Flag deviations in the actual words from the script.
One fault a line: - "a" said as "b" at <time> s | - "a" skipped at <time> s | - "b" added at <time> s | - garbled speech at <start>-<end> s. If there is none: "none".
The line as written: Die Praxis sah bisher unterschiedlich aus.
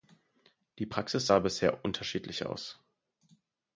none